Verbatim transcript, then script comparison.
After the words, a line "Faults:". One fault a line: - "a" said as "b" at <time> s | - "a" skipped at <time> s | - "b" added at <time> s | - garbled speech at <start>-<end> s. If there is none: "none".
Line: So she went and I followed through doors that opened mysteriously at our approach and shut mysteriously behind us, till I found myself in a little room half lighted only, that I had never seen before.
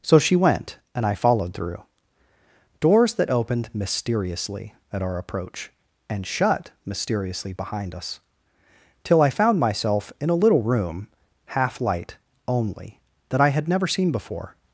So she went and I followed through doors that opened mysteriously at our approach and shut mysteriously behind us, till I found myself in a little room half light only, that I had never seen before.
Faults:
- "lighted" said as "light" at 11.8 s